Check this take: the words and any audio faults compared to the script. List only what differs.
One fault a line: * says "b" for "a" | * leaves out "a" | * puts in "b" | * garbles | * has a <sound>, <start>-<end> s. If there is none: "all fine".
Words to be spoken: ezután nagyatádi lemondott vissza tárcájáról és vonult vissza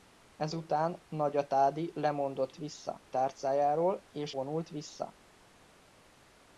all fine